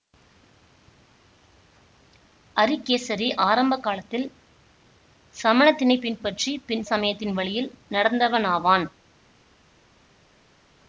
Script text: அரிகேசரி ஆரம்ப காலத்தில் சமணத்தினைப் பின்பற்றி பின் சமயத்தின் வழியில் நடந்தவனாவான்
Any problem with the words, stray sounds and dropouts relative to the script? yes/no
no